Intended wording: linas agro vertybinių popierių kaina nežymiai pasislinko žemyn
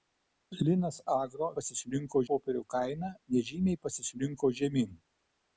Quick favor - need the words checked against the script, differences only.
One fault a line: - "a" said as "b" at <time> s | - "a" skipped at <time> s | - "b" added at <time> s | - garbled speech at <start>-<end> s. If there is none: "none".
- "vertybinių" said as "pasislinko" at 1.6 s